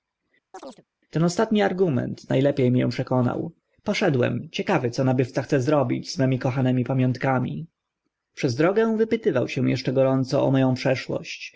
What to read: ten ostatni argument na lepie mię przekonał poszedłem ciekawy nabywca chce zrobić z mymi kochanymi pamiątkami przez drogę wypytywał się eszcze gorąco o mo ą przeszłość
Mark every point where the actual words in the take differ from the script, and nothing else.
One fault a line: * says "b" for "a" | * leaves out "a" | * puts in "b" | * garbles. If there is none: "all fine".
* puts in "co"